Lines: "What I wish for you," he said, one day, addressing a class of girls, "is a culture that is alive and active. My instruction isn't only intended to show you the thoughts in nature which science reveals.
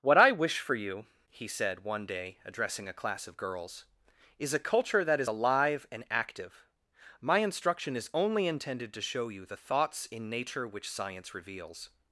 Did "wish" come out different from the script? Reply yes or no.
no